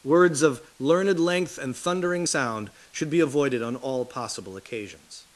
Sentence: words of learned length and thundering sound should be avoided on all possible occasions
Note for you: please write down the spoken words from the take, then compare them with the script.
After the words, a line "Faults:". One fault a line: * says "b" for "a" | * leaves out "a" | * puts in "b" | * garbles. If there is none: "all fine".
words of learned length and thundering sound should be avoided on all possible occasions
Faults:
all fine